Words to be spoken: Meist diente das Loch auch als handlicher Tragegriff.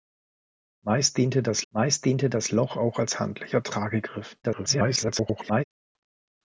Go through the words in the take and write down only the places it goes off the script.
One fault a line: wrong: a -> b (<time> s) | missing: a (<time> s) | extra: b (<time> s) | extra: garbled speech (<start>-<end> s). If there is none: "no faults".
extra: meist diente das (1.7 s)
extra: garbled speech (4.4-5.6 s)